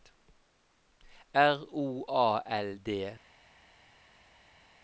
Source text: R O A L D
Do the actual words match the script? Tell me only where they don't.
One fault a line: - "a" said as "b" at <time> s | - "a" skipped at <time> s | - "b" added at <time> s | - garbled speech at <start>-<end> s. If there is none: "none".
none